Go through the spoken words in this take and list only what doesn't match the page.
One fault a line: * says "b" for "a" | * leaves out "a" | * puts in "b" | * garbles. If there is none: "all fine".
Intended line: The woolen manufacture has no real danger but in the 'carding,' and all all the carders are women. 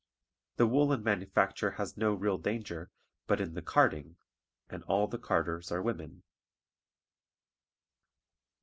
* leaves out "all"